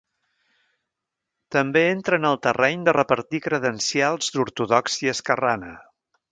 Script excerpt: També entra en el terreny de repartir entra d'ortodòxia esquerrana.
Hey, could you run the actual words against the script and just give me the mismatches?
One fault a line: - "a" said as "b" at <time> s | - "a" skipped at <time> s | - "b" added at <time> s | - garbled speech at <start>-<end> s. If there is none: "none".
- "entra" said as "credencials" at 3.5 s